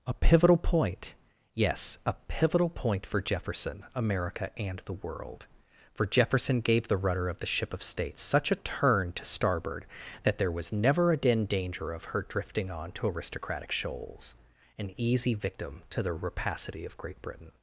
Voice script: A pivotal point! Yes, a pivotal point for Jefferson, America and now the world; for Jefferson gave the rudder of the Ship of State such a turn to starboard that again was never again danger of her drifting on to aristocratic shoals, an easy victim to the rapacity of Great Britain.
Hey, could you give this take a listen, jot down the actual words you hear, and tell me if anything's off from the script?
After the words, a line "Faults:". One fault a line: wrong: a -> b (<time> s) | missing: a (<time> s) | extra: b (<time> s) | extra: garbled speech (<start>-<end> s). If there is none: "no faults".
A pivotal point! Yes, a pivotal point for Jefferson, America and the world; for Jefferson gave the rudder of the Ship of State such a turn to starboard that there was never again danger of her drifting on to aristocratic shoals, an easy victim to the rapacity of Great Britain.
Faults:
missing: now (4.8 s)
wrong: again -> there (10.4 s)